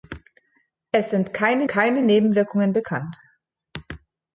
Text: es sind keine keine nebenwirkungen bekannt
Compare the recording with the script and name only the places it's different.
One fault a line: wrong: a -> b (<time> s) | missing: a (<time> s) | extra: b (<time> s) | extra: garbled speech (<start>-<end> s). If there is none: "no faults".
no faults